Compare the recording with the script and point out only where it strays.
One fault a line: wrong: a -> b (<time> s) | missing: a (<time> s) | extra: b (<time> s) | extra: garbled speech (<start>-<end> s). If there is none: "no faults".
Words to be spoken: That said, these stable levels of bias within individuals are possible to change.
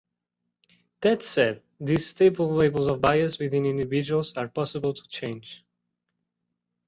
no faults